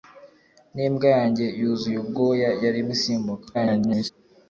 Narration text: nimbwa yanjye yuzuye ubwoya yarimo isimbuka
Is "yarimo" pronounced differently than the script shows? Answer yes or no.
no